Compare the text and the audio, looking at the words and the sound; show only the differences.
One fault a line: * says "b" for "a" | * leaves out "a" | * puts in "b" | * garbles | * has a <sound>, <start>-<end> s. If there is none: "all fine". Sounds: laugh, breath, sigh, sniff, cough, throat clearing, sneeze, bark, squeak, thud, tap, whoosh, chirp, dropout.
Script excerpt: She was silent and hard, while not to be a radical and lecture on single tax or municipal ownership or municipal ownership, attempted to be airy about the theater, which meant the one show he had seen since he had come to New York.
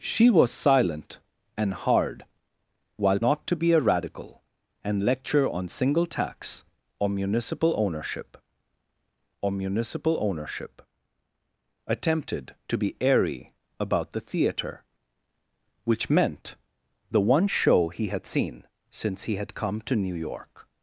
all fine